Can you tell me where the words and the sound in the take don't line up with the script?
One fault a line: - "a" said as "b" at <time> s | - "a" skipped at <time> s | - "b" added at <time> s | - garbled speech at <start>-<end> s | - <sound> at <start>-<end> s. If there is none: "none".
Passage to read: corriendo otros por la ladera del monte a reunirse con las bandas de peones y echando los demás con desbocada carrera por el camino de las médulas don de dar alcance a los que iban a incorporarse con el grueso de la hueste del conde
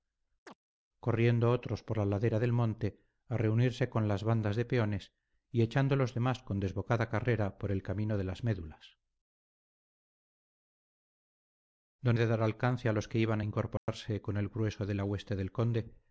- chirp at 0.5-0.6 s
- dropout at 13.8-13.9 s